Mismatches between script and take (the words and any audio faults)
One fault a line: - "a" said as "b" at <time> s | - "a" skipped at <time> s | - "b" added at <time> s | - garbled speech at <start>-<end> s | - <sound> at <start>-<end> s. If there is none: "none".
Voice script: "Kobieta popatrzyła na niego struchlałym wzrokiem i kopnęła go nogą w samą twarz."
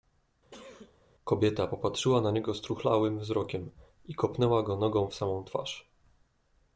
- sneeze at 0.5-1.0 s